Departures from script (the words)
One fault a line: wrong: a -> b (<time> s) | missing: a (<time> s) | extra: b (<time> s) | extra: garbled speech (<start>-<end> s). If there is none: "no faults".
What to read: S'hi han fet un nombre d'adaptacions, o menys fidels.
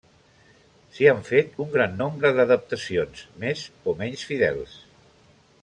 extra: gran (1.7 s)
extra: més (3.4 s)